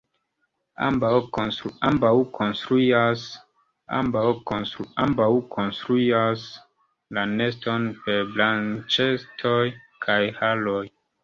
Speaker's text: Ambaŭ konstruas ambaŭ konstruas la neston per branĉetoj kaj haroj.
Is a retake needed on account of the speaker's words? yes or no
no